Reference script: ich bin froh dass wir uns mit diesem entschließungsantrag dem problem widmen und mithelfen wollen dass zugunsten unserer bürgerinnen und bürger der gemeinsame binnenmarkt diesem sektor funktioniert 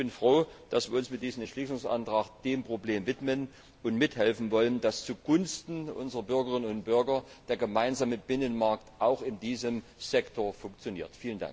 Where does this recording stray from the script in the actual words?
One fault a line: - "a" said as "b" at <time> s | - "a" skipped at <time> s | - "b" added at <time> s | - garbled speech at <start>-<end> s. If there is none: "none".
- "auch in" added at 9.0 s